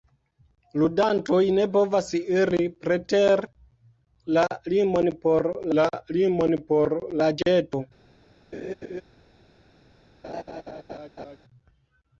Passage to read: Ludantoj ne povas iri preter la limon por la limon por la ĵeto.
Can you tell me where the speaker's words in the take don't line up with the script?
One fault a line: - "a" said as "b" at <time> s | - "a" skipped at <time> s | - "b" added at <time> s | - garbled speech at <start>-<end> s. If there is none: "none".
none